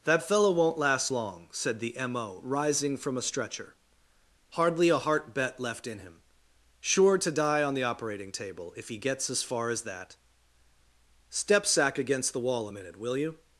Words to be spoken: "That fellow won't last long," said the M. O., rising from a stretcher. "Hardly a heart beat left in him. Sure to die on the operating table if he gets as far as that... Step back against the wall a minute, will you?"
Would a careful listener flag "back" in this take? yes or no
yes